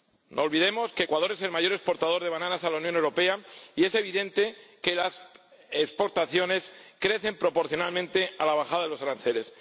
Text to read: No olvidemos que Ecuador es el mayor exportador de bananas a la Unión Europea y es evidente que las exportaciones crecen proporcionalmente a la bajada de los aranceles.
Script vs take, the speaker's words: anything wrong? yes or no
no